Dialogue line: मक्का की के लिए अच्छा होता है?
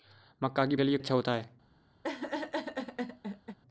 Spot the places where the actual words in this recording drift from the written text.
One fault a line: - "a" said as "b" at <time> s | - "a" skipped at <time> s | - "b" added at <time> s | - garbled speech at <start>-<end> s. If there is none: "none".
none